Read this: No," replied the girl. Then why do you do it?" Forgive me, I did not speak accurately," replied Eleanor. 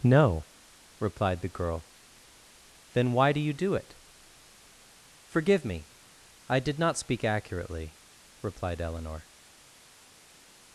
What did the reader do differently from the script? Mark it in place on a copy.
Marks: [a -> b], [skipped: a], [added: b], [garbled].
No," replied the girl. Then why do you do it?" Forgive me, I did not speak accurately," replied Eleanor.